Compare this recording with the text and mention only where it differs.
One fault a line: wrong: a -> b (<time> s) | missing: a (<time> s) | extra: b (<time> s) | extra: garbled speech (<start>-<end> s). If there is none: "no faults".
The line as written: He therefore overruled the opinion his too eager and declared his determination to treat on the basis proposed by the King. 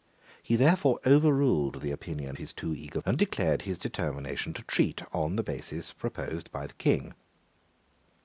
no faults